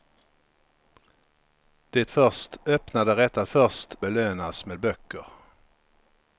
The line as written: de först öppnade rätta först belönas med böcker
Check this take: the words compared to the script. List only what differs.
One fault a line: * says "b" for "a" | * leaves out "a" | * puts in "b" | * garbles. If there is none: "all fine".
all fine